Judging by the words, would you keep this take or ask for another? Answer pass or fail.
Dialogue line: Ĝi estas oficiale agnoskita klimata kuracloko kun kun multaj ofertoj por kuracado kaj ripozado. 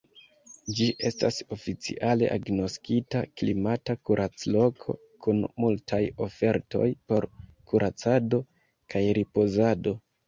fail